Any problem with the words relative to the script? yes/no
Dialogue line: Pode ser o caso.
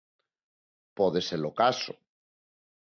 no